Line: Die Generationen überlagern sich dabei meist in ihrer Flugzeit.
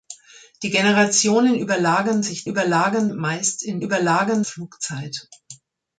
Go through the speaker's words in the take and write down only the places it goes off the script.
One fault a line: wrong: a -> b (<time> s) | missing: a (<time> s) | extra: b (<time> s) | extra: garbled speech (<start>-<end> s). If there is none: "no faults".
wrong: dabei -> überlagern (2.5 s)
wrong: ihrer -> überlagern (3.8 s)